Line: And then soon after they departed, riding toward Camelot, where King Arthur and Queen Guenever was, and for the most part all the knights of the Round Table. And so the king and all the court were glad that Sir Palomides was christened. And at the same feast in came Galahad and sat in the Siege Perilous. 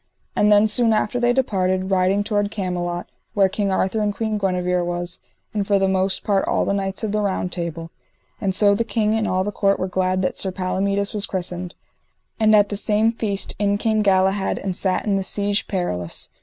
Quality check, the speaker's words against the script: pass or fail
pass